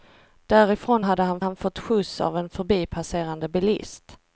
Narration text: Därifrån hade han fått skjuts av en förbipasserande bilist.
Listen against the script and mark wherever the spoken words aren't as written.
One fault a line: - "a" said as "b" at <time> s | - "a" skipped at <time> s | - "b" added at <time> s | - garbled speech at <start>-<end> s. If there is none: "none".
- "han" added at 1.4 s